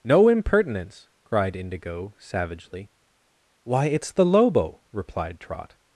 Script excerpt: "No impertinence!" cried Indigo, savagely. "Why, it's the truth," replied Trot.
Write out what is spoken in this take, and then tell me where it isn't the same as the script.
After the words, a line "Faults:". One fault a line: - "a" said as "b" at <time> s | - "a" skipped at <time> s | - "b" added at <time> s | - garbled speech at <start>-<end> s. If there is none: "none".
"No impertinence!" cried Indigo, savagely. "Why, it's the lobo," replied Trot.
Faults:
- "truth" said as "lobo" at 4.2 s